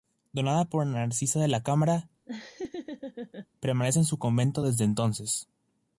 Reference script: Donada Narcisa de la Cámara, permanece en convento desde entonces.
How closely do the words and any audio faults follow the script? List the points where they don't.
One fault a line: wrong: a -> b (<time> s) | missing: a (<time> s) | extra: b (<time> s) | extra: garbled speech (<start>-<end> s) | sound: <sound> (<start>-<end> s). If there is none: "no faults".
extra: por (0.7 s)
sound: laugh (2.3-3.5 s)
extra: su (4.1 s)